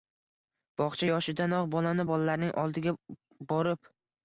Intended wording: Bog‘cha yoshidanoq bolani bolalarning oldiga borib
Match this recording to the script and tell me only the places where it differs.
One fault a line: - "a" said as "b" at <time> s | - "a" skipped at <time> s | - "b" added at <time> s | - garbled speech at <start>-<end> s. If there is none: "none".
none